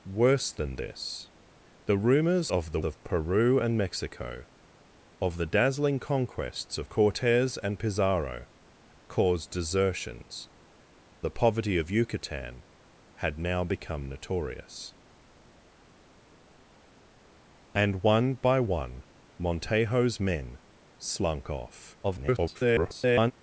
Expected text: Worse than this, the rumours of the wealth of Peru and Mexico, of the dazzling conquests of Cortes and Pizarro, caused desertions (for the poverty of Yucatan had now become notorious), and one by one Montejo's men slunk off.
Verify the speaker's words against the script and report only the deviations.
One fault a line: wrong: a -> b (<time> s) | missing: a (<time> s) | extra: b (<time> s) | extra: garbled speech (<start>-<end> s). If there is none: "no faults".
missing: wealth (2.8 s)
missing: for (10.5 s)
extra: garbled speech (22.0-23.3 s)